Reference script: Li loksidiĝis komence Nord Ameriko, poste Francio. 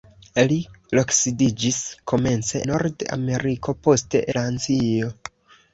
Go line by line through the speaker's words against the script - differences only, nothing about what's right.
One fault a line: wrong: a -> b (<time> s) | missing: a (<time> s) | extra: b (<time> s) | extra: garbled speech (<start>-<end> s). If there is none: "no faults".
no faults